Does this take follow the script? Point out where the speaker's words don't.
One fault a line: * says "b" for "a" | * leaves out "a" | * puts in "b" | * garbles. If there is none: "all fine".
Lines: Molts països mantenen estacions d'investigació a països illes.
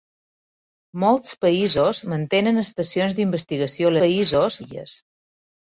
all fine